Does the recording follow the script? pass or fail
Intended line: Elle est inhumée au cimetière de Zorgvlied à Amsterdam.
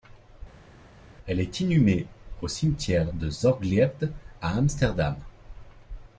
pass